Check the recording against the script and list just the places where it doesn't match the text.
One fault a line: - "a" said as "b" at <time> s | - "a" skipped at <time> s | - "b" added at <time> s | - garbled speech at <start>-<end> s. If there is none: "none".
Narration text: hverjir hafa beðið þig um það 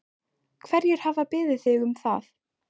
none